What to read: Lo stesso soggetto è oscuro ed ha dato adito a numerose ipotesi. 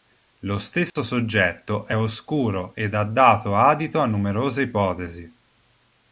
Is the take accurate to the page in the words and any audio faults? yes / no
no